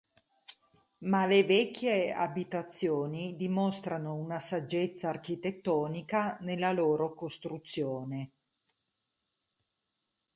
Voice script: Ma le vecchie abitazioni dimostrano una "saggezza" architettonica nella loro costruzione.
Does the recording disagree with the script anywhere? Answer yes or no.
no